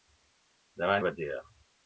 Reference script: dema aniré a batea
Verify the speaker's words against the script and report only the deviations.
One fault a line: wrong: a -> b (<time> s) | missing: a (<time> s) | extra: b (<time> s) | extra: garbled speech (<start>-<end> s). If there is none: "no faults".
missing: aniré (0.9 s)